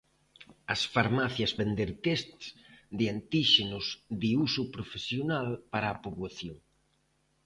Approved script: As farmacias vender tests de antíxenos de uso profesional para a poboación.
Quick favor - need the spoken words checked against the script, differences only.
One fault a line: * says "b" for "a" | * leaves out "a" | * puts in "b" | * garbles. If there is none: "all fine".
all fine